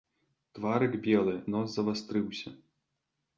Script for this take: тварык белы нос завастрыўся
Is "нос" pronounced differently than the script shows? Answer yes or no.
no